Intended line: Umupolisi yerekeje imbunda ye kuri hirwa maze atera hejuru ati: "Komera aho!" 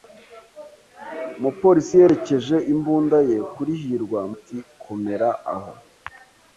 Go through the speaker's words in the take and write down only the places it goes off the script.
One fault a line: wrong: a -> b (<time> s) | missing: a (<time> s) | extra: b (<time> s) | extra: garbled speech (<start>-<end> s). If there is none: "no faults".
missing: maze atera hejuru (4.2 s)